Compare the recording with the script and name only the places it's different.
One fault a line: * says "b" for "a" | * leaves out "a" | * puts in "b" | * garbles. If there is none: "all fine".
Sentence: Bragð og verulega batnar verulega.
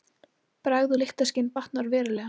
* says "lyktarskyn" for "verulega"